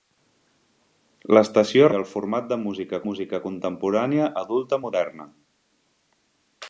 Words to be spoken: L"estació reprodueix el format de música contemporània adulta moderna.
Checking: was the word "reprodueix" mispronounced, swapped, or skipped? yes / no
yes